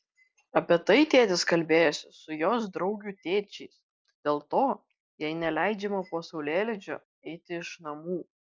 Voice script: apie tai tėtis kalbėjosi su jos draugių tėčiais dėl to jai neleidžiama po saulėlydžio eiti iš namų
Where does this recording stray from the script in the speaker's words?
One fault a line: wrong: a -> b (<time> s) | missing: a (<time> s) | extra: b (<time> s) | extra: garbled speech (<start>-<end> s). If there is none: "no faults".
no faults